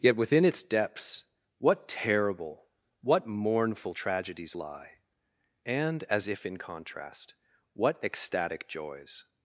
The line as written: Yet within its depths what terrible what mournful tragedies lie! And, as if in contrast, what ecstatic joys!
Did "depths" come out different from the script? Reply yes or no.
no